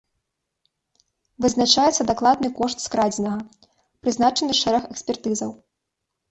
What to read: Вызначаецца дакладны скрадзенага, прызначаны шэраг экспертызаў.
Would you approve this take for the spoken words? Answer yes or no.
no